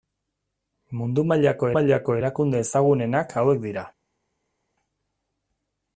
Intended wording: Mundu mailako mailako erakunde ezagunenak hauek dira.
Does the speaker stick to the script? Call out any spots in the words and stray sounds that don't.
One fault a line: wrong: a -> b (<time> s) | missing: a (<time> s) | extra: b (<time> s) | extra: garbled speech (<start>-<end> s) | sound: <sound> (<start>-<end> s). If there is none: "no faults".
no faults